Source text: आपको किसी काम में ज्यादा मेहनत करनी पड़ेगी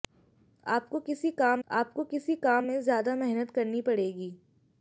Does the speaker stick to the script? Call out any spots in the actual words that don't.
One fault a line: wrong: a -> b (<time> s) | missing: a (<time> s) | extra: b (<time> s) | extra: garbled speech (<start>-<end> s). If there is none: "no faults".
extra: आपको किसी काम (1.7 s)